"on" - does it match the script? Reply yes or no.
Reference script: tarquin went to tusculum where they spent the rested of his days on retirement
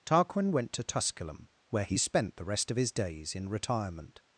no